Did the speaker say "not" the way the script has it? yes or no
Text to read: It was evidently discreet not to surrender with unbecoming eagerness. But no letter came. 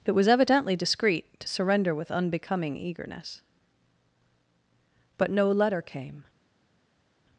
no